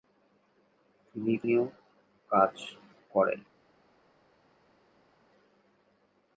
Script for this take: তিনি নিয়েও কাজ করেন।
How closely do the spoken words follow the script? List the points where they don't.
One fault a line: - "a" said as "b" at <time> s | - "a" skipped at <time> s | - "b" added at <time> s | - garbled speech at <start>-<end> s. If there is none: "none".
none